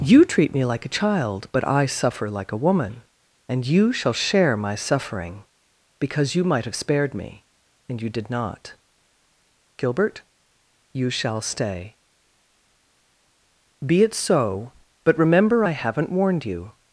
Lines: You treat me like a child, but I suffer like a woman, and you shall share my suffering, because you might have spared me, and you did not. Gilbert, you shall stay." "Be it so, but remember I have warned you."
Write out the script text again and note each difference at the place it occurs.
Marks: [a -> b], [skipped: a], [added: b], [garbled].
You treat me like a child, but I suffer like a woman, and you shall share my suffering, because you might have spared me, and you did not. Gilbert, you shall stay." "Be it so, but remember I [have -> haven't] warned you."